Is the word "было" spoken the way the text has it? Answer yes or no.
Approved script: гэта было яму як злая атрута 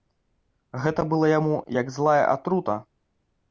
yes